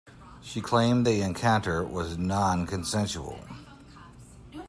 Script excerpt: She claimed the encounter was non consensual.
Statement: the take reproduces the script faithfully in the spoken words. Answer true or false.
true